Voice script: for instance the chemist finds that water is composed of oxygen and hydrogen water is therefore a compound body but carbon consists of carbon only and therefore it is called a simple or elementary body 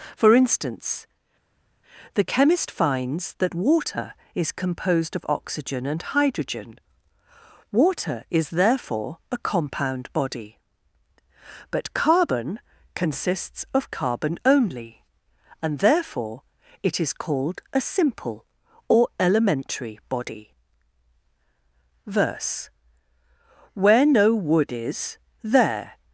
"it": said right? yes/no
yes